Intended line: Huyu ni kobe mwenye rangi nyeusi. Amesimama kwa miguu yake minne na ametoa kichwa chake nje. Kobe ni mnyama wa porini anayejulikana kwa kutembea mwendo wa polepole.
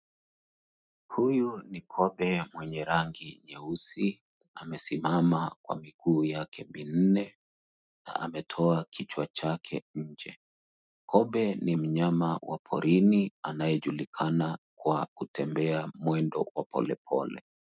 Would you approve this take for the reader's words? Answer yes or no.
yes